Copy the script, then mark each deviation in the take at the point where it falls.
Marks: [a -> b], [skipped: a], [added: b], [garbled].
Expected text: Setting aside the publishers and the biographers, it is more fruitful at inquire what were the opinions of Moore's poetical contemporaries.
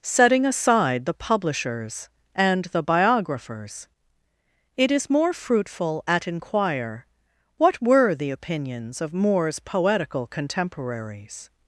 Setting aside the publishers and the biographers, it is more fruitful at inquire what were the opinions of Moore's poetical contemporaries.